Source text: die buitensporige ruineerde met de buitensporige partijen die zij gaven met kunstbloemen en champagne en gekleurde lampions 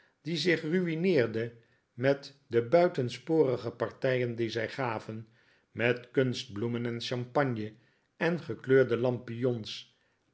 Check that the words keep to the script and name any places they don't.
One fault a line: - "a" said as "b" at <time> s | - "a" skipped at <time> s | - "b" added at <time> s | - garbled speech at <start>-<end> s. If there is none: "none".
- "buitensporige" said as "zich" at 0.4 s